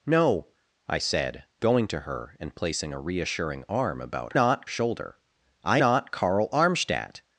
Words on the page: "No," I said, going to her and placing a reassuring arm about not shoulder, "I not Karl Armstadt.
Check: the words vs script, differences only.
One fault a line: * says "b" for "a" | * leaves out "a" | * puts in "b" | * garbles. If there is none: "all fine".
all fine